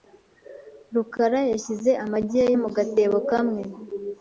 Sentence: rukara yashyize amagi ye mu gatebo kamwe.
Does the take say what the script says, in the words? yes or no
yes